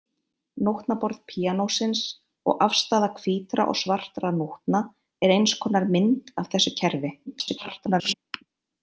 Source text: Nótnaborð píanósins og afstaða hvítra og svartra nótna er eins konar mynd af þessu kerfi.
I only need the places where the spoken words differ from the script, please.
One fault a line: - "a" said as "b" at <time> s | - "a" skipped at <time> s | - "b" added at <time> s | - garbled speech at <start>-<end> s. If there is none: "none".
- garbled speech at 7.3-8.1 s